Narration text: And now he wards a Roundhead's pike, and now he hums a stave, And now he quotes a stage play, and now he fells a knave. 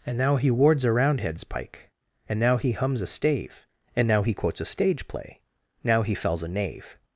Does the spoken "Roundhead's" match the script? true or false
true